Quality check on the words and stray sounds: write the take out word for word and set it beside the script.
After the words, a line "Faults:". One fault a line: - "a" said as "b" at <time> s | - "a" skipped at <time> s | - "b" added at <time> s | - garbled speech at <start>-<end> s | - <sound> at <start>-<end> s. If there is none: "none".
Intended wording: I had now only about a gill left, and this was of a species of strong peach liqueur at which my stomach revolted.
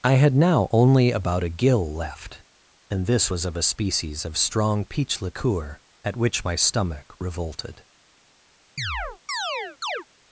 I had now only about a gill left, and this was of a species of strong peach liqueur at which my stomach revolted.
Faults:
- chirp at 8.8-10.1 s